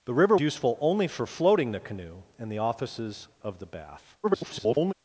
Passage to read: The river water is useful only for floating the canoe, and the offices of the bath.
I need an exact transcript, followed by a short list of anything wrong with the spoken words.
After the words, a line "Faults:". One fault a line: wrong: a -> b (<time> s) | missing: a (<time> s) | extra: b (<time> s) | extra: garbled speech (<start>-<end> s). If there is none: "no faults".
The river useful only for floating the canoe, and the offices of the bath. [garbled]
Faults:
missing: water is (0.3 s)
extra: garbled speech (4.2-4.9 s)